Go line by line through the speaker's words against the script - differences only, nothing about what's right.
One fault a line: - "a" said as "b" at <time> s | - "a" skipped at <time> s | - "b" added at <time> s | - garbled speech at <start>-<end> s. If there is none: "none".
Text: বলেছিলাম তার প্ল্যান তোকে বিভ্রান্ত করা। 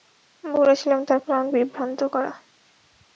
- "তোকে" skipped at 1.4 s